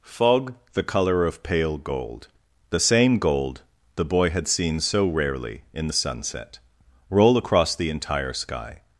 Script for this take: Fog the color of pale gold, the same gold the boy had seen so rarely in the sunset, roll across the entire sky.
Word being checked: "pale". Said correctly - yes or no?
yes